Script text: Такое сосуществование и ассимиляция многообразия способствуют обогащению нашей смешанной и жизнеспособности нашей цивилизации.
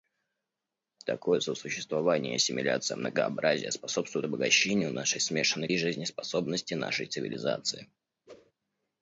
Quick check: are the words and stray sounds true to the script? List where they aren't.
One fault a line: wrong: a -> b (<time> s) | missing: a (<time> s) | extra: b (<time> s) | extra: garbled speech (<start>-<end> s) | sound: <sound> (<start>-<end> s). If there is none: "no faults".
sound: whoosh (8.3-8.5 s)